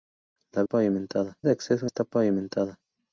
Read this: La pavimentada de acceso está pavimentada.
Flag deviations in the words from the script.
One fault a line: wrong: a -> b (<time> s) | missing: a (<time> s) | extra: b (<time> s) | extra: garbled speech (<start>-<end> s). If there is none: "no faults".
no faults